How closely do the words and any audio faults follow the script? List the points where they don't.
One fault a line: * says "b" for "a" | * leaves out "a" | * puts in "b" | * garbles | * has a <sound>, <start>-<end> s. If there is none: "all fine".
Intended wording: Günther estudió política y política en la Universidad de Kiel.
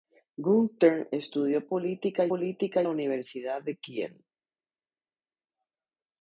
all fine